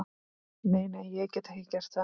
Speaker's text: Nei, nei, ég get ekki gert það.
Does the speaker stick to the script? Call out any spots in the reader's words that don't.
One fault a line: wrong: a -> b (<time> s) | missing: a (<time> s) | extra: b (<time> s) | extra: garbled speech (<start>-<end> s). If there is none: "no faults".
no faults